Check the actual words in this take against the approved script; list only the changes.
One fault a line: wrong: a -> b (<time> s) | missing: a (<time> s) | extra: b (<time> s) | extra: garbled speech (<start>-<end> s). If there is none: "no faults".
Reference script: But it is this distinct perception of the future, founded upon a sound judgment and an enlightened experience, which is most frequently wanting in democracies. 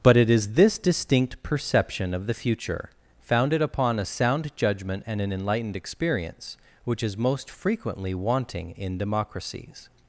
no faults